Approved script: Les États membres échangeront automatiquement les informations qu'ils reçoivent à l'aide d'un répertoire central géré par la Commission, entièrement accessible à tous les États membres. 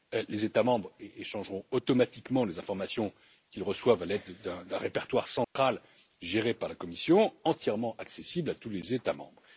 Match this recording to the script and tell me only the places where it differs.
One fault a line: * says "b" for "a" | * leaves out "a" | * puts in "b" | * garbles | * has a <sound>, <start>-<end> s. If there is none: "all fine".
* has a dropout, 5.4-5.6 s